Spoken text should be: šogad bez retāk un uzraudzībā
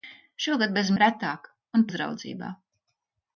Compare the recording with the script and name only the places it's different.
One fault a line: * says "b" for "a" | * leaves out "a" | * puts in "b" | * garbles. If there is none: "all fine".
all fine